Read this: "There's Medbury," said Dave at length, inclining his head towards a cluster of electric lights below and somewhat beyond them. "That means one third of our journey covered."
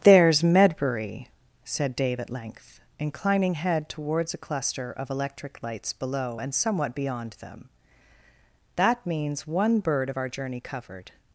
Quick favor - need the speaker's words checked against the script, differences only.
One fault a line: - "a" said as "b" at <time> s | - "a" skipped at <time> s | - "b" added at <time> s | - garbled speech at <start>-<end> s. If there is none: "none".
- "his" skipped at 3.6 s
- "third" said as "bird" at 9.8 s